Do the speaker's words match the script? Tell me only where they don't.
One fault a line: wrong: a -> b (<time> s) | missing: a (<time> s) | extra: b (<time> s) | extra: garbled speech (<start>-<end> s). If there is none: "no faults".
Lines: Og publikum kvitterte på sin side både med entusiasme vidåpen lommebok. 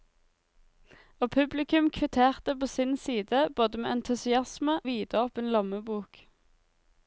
no faults